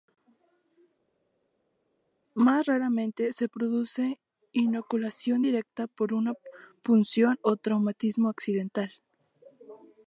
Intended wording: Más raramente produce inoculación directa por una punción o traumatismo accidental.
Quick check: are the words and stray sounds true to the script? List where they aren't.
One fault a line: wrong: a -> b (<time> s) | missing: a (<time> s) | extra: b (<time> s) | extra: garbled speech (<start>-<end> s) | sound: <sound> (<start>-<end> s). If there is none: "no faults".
extra: se (3.3 s)